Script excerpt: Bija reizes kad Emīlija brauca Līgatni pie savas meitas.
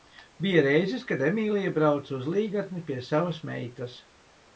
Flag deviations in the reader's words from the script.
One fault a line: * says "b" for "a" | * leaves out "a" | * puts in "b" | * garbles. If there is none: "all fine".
* puts in "uz"